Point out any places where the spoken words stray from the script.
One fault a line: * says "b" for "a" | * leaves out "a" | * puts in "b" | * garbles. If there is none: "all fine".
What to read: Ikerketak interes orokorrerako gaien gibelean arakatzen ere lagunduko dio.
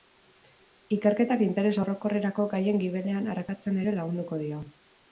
all fine